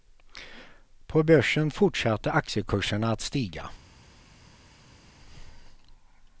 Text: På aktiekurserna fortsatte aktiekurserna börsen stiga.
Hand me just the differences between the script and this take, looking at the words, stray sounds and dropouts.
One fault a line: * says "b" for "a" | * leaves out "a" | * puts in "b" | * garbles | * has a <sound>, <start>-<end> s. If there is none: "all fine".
* says "börsen" for "aktiekurserna"
* says "att" for "börsen"